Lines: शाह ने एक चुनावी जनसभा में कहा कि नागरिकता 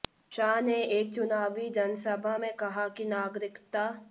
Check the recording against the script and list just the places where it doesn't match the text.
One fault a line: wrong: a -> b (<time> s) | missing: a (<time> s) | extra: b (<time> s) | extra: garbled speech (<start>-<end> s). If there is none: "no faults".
no faults